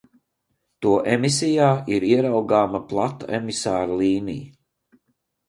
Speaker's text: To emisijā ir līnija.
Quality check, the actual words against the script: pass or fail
fail